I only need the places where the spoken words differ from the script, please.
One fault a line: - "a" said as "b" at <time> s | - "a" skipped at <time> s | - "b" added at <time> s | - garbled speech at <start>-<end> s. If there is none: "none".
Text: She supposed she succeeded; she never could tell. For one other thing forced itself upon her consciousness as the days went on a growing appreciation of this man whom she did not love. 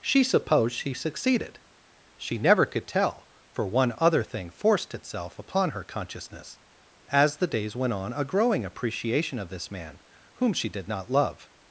none